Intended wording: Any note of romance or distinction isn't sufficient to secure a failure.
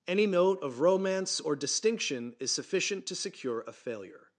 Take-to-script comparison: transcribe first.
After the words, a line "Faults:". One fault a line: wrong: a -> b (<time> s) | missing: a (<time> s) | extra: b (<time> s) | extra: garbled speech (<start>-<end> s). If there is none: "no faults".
Any note of romance or distinction is sufficient to secure a failure.
Faults:
wrong: isn't -> is (2.4 s)